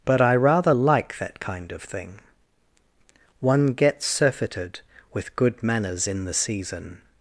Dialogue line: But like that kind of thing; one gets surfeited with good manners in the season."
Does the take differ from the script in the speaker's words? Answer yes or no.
yes